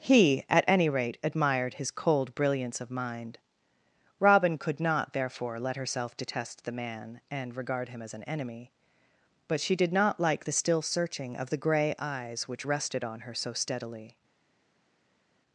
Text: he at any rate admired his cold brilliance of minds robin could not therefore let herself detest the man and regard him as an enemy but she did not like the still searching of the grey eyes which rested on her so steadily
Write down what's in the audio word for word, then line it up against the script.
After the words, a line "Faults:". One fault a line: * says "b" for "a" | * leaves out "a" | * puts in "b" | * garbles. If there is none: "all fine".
he at any rate admired his cold brilliance of mind robin could not therefore let herself detest the man and regard him as an enemy but she did not like the still searching of the grey eyes which rested on her so steadily
Faults:
* says "mind" for "minds"